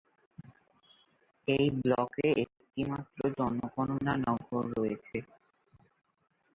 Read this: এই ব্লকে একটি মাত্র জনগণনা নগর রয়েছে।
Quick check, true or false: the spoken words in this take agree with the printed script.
true